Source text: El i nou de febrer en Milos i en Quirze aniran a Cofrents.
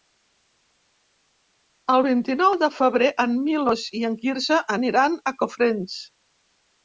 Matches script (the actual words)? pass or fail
fail